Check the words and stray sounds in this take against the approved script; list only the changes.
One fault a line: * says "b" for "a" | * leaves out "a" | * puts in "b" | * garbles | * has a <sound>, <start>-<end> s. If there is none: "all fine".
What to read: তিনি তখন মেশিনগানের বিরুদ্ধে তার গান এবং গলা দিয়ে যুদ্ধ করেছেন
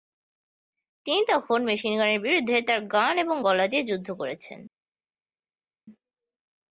all fine